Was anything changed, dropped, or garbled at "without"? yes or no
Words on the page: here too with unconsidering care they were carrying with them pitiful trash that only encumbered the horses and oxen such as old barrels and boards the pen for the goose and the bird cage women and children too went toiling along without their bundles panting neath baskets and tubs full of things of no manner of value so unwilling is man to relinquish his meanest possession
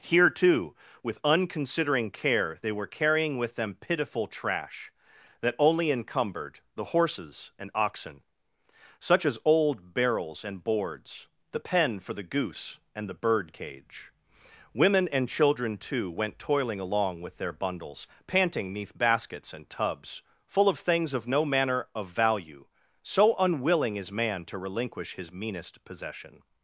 yes